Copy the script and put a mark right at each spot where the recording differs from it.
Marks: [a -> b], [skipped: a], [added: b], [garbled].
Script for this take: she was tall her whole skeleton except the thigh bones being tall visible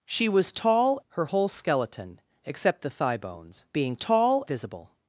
she was tall her whole skeleton except the thigh bones being tall visible